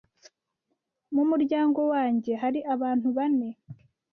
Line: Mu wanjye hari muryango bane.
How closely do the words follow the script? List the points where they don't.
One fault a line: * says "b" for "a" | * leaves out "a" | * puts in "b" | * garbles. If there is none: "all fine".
* puts in "muryango"
* says "abantu" for "muryango"